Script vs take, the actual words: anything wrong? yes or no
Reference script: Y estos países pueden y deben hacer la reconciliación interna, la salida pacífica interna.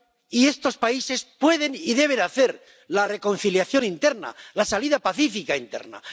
no